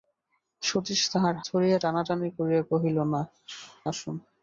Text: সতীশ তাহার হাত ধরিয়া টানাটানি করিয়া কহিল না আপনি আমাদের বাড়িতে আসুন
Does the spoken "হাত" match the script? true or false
false